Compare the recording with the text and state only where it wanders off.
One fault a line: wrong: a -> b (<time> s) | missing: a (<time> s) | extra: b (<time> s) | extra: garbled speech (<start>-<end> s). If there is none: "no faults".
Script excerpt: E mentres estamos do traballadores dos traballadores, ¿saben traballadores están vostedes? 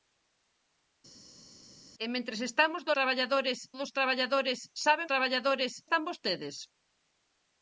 no faults